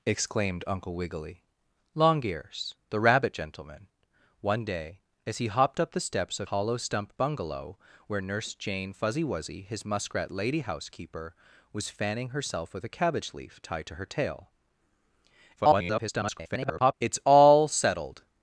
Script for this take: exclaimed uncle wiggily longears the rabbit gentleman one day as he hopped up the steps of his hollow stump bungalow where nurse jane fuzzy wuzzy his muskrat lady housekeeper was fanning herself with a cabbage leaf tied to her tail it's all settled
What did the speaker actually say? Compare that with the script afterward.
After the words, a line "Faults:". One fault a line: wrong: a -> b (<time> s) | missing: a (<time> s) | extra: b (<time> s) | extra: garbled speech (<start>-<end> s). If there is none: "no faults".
exclaimed uncle wiggily longears the rabbit gentleman one day as he hopped up the steps of hollow stump bungalow where nurse jane fuzzy wuzzy his muskrat lady housekeeper was fanning herself with a cabbage leaf tied to her tail [garbled] it's all settled
Faults:
missing: his (6.5 s)
extra: garbled speech (15.6-16.9 s)